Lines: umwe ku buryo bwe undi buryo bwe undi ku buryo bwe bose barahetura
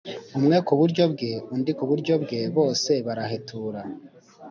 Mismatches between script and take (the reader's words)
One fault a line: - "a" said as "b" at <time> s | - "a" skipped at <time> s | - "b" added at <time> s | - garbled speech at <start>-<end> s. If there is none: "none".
- "buryo bwe undi" skipped at 1.7 s